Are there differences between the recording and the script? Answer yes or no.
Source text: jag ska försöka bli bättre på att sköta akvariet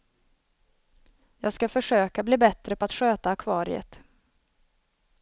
no